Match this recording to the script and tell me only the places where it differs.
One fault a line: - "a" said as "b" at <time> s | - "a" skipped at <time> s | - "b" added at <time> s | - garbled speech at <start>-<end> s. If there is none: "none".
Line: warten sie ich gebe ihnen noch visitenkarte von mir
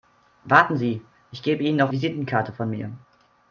none